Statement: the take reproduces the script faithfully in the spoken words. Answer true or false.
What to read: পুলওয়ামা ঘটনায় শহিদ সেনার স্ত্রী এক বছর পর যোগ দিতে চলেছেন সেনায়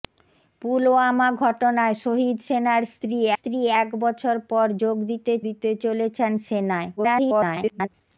false